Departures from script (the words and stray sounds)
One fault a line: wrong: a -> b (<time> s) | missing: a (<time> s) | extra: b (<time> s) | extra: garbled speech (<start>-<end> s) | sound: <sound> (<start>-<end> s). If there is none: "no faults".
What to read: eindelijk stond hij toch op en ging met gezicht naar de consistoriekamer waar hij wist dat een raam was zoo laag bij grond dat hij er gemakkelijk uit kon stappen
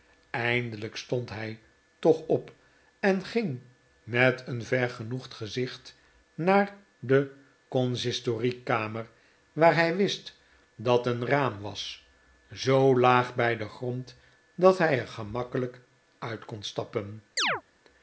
extra: een vergenoegd (4.5 s)
extra: den (13.6 s)
sound: chirp (17.4-17.6 s)